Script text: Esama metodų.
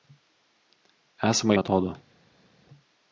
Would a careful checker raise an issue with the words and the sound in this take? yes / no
no